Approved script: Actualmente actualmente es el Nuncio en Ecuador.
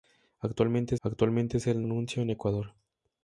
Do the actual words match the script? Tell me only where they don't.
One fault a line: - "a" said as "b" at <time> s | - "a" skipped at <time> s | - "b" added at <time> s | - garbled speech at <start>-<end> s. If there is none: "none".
none